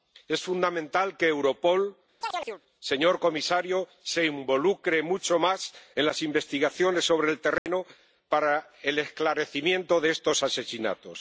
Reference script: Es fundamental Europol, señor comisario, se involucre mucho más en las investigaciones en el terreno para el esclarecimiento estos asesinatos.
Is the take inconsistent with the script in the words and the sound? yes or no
yes